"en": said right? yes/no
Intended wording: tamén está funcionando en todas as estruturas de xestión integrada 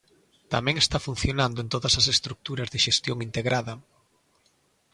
yes